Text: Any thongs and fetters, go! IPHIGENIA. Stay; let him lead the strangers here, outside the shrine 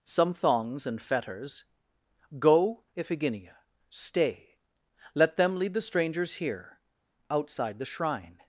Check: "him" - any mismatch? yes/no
yes